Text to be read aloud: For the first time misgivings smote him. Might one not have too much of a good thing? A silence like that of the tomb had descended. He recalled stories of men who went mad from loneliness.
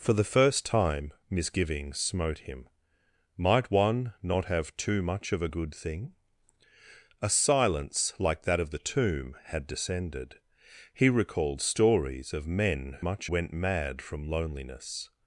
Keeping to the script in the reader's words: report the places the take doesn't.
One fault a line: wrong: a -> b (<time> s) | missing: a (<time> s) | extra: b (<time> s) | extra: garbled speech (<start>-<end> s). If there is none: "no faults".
wrong: who -> much (13.0 s)